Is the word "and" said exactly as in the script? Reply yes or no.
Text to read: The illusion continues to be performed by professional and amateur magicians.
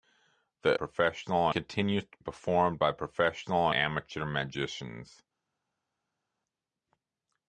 no